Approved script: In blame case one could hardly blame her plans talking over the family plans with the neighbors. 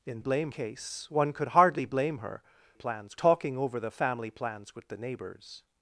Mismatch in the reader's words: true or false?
false